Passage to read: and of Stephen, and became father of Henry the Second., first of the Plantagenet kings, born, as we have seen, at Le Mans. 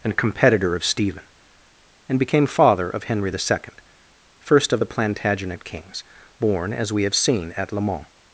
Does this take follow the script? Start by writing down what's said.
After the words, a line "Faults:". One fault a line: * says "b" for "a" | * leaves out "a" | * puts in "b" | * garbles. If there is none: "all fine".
and competitor of Stephen, and became father of Henry the Second., first of the Plantagenet kings, born, as we have seen, at Le Mans.
Faults:
* puts in "competitor"